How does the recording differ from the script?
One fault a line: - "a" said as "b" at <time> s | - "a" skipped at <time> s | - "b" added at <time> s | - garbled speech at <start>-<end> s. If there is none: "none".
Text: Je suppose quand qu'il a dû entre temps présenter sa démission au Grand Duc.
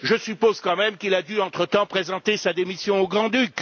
- "même" added at 0.8 s